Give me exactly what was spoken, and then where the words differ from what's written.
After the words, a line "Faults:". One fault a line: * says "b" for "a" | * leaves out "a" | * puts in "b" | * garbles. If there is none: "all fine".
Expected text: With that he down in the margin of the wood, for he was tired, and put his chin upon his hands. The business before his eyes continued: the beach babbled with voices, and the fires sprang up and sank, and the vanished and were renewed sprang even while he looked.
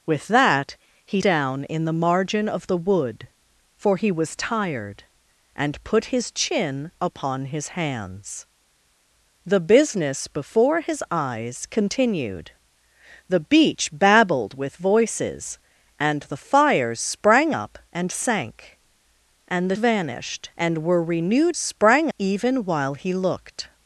With that he down in the margin of the wood, for he was tired, and put his chin upon his hands. The business before his eyes continued: the beach babbled with voices, and the fires sprang up and sank, and the vanished and were renewed sprang even while he looked.
Faults:
all fine